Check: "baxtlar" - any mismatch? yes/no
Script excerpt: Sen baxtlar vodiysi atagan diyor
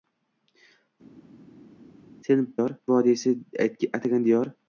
yes